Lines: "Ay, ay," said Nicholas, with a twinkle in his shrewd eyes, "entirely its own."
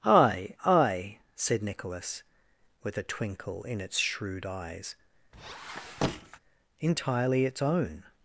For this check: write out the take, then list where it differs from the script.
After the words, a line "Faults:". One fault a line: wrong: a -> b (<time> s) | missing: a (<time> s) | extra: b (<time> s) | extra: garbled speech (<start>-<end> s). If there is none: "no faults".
"Ay, ay," said Nicholas, with a twinkle in its shrewd eyes, "entirely its own."
Faults:
wrong: his -> its (3.8 s)